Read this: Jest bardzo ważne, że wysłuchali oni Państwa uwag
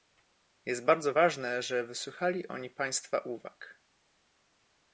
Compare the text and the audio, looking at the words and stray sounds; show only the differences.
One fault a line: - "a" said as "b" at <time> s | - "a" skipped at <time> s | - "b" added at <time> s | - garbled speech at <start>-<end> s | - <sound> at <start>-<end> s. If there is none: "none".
none